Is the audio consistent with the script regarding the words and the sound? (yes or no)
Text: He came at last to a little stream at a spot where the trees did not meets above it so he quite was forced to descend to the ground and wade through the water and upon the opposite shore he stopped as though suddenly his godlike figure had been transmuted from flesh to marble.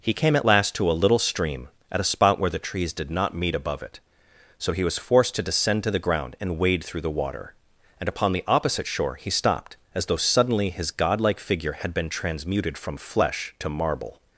no